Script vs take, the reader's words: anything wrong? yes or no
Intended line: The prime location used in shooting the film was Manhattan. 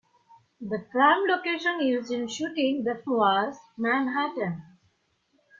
yes